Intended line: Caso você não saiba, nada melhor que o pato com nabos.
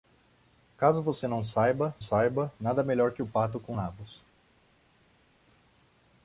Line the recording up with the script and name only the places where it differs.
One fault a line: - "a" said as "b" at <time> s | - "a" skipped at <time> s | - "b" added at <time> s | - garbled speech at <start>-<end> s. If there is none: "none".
- "saiba" added at 2.0 s